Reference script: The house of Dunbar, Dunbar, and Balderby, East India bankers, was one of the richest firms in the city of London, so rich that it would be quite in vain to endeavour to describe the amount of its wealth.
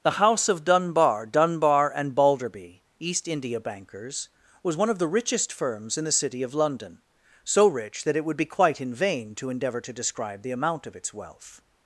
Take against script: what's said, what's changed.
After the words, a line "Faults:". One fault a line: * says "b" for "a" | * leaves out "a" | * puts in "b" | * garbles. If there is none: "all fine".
The house of Dunbar, Dunbar, and Balderby, East India bankers, was one of the richest firms in the city of London, so rich that it would be quite in vain to endeavour to describe the amount of its wealth.
Faults:
all fine